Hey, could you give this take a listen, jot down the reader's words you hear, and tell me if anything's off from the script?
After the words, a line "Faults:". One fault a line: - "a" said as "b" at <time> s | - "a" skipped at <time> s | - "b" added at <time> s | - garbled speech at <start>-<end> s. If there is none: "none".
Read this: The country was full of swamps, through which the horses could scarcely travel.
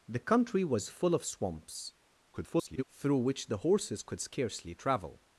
The country was full of swamps, [garbled] through which the horses could scarcely travel.
Faults:
- garbled speech at 2.3-2.8 s